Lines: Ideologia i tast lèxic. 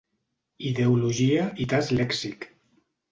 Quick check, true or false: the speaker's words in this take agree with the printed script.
true